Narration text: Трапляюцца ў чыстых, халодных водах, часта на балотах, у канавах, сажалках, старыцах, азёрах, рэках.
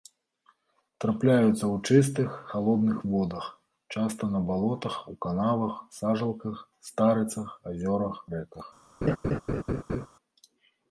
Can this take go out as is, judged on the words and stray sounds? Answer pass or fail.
fail